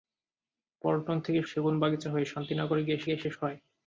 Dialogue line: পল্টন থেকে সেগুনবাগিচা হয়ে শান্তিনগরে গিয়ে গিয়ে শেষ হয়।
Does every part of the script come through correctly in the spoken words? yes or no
yes